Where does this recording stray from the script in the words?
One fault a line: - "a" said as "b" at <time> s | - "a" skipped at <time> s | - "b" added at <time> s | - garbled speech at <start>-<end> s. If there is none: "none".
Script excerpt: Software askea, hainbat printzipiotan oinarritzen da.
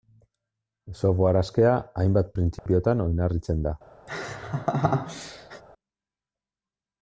none